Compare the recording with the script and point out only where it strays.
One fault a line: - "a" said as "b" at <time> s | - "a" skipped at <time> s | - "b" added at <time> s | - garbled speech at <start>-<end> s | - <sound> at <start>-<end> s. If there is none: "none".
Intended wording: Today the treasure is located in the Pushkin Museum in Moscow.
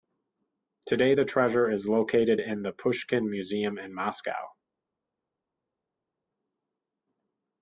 none